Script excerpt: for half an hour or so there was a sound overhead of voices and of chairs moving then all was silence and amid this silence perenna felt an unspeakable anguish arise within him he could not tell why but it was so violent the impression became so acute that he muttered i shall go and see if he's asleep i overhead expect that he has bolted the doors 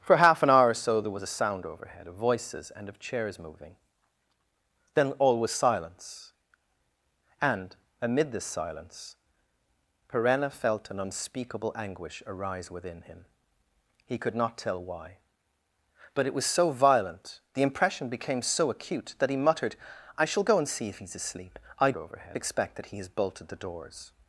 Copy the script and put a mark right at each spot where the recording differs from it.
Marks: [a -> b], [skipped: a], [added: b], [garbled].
for half an hour or so there was a sound overhead of voices and of chairs moving then all was silence and amid this silence perenna felt an unspeakable anguish arise within him he could not tell why but it was so violent the impression became so acute that he muttered i shall go and see if he's asleep i overhead expect that he has bolted the doors